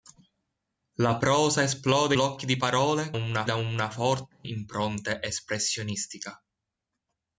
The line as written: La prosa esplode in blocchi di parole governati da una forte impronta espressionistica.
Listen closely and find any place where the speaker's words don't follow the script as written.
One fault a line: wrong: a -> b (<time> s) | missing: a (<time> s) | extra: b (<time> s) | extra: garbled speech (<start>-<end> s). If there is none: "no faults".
missing: in (2.1 s)
wrong: governati -> una (3.1 s)